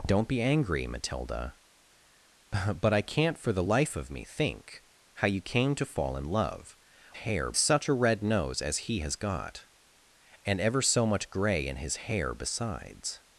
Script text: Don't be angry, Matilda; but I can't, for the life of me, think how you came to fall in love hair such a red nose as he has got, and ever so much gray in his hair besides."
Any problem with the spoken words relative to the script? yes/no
no